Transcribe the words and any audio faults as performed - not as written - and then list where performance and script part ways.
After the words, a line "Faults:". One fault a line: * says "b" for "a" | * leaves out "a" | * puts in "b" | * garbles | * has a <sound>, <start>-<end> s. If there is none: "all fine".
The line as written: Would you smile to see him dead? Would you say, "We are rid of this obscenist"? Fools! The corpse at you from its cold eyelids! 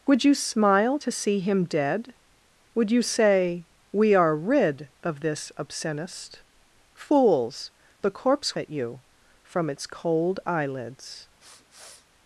Would you smile to see him dead? Would you say, "We are rid of this obscenist"? Fools! The corpse at you from its cold eyelids!
Faults:
* has a sniff, 11.4-12.1 s